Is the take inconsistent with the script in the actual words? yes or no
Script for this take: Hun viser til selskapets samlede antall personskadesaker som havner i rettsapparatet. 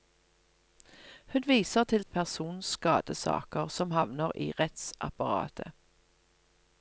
yes